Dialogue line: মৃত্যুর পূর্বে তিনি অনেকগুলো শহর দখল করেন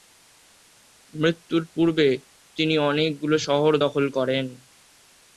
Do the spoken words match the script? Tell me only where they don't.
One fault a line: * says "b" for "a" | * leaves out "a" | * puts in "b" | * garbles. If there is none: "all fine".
all fine